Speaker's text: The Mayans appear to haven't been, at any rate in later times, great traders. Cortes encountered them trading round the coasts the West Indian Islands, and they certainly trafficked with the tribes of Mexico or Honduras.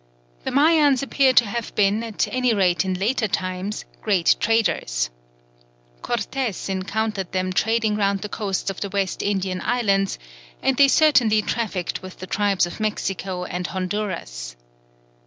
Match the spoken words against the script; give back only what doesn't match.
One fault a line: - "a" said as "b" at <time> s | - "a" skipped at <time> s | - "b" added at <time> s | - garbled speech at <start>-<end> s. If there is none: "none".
- "haven't" said as "have" at 1.4 s
- "of" added at 8.7 s
- "or" said as "and" at 13.4 s